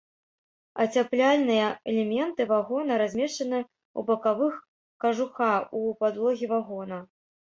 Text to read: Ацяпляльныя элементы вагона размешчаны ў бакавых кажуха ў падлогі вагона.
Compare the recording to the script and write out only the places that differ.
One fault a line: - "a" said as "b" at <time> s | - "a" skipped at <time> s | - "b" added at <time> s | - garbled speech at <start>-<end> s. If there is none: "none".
none